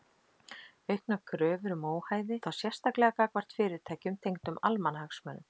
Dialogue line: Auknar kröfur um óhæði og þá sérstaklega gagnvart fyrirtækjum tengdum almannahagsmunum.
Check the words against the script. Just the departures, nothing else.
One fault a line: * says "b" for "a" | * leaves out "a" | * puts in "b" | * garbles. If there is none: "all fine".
* leaves out "og"